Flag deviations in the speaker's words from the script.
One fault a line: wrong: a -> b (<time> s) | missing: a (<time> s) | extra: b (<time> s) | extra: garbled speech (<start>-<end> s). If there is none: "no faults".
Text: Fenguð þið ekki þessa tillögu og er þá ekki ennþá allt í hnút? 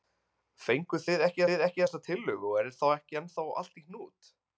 extra: þið ekki (1.5 s)